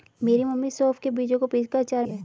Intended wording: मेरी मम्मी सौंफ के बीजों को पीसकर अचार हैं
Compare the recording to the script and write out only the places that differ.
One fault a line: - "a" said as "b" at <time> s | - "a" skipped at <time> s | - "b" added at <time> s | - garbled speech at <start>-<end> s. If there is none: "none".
none